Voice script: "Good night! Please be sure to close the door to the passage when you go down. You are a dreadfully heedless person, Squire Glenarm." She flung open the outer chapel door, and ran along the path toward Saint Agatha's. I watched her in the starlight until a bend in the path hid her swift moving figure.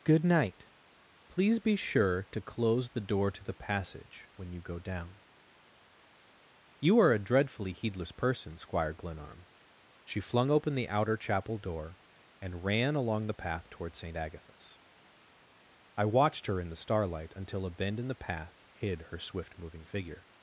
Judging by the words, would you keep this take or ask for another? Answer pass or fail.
pass